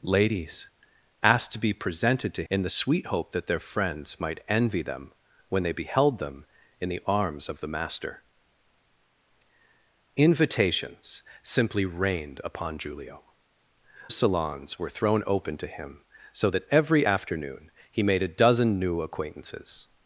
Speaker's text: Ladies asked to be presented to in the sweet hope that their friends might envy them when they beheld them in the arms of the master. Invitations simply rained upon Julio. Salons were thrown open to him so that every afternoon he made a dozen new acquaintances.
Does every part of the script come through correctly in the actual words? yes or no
yes